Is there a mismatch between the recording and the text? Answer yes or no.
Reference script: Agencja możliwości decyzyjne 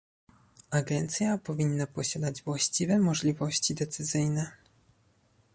yes